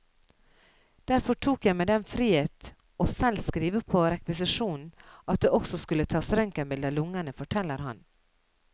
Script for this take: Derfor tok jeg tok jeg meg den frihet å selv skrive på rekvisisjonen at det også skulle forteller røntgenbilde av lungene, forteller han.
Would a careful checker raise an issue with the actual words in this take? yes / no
yes